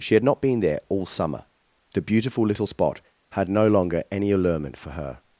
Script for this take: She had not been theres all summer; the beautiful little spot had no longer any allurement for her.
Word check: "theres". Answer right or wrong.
wrong